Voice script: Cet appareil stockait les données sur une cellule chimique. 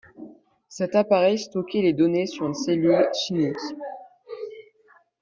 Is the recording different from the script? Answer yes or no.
no